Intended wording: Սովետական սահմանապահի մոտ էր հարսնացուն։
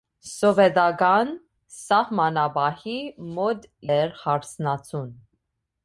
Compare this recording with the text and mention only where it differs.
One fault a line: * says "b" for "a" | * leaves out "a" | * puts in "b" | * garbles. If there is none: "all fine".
all fine